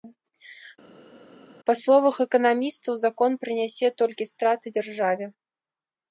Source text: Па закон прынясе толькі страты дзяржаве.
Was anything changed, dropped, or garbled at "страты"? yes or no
no